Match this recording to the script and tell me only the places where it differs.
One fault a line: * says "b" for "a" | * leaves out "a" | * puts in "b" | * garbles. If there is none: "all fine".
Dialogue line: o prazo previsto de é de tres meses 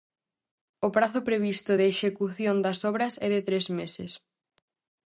* puts in "execución das obras"